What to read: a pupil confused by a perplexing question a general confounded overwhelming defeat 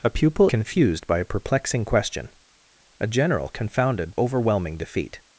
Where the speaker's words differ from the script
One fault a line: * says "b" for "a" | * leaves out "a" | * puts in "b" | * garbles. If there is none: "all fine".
all fine